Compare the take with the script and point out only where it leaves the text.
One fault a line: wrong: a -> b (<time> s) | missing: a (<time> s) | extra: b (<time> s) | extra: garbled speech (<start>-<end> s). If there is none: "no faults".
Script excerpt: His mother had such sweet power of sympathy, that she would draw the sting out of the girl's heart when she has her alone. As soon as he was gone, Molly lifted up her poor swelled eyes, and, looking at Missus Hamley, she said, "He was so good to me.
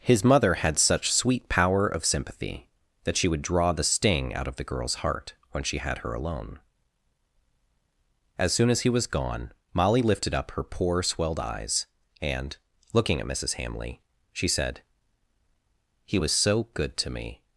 wrong: has -> had (5.8 s)